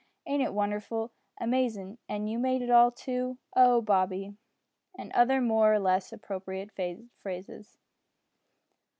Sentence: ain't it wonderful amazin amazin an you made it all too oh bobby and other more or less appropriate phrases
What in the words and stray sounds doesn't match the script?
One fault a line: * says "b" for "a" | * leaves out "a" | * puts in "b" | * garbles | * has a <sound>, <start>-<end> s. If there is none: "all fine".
* leaves out "amazin"